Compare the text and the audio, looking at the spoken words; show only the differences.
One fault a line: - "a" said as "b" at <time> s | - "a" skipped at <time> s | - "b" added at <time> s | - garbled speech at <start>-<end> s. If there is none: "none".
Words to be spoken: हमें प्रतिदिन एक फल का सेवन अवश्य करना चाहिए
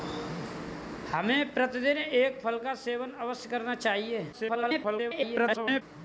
- garbled speech at 4.3-5.8 s